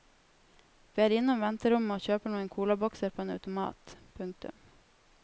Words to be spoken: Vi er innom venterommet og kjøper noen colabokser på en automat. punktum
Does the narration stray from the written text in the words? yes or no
no